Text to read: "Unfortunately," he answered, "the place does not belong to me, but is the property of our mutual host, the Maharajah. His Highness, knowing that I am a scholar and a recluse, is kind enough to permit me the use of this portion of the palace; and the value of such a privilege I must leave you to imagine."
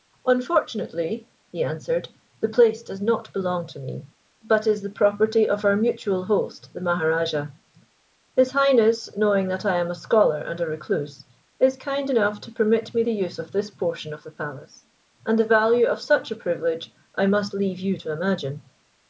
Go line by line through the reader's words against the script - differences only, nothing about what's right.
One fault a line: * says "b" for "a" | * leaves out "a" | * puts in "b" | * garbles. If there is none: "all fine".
all fine